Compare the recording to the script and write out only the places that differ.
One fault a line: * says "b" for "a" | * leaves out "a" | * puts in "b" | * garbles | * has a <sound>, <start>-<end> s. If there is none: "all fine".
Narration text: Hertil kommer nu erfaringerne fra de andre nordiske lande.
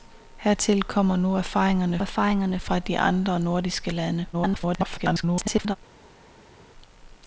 * puts in "erfaringerne"
* garbles